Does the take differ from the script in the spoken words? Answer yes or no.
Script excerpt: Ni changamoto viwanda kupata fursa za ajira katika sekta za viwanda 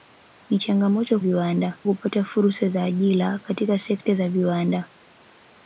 no